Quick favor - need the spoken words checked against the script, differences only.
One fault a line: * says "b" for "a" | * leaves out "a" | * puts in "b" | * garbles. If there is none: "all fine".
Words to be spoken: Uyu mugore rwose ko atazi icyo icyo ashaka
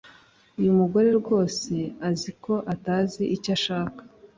* puts in "azi"
* leaves out "icyo"